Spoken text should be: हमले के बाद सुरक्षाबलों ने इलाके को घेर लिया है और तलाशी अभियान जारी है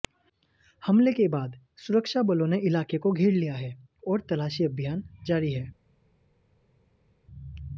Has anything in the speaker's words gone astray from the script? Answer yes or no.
no